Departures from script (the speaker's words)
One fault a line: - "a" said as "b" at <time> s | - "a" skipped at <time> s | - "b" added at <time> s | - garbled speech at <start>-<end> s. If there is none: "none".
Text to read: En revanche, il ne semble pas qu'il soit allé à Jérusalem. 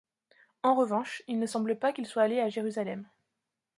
none